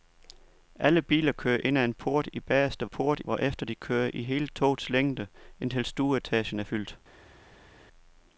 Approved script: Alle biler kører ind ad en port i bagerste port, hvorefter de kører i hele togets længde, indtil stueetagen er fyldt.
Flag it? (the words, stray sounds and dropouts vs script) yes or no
no